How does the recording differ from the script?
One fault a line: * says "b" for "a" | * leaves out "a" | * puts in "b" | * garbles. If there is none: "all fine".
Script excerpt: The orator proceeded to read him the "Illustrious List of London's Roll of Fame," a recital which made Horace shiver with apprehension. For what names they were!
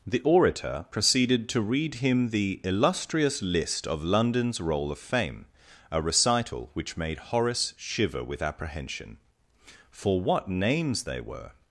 all fine